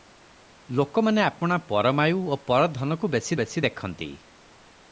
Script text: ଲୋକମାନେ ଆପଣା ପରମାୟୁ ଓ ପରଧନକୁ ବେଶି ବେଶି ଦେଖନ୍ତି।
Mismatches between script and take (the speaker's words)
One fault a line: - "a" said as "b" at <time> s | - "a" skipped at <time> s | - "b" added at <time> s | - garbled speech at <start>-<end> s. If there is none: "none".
none